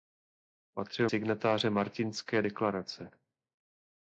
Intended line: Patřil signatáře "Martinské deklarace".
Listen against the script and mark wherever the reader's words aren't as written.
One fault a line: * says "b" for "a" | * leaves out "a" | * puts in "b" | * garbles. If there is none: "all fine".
all fine